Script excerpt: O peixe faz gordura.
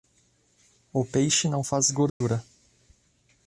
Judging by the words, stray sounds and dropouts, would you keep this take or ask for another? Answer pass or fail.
fail